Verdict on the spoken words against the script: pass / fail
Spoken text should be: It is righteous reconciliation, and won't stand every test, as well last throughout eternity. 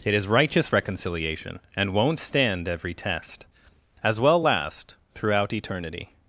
pass